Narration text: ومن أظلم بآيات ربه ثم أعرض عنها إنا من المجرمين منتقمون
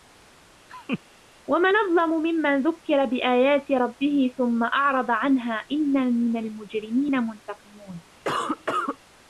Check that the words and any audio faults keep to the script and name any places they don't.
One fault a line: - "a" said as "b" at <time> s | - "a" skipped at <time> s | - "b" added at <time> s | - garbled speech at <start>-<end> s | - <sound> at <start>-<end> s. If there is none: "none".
- laugh at 0.7-1.0 s
- "ممن ذكر" added at 2.2 s
- cough at 8.2-9.0 s